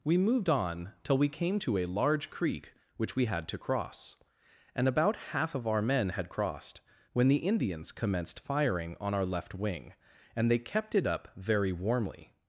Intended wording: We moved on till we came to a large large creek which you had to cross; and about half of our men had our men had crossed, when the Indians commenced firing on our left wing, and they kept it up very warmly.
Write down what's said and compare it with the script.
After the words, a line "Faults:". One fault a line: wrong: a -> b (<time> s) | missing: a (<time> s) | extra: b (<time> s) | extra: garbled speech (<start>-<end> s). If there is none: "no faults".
We moved on till we came to a large creek which we had to cross; and about half of our men had crossed, when the Indians commenced firing on our left wing, and they kept it up very warmly.
Faults:
missing: large (2.3 s)
wrong: you -> we (3.2 s)
missing: our men had (6.3 s)